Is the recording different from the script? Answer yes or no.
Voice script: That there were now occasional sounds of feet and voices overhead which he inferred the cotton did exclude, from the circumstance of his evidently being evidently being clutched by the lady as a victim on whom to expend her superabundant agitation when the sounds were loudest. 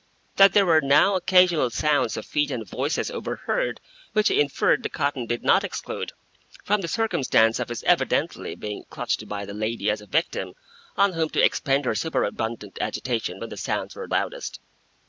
yes